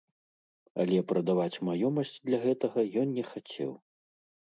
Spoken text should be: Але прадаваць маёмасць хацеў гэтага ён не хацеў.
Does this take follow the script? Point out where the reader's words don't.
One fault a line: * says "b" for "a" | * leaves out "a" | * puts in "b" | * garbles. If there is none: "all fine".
* says "для" for "хацеў"